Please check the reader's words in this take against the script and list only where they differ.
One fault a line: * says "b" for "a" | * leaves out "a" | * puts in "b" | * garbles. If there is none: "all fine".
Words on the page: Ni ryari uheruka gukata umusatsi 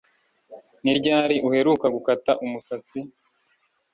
all fine